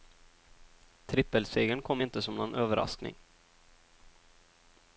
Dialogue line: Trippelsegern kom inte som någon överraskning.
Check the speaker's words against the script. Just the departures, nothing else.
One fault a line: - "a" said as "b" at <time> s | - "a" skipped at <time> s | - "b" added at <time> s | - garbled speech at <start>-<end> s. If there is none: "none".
none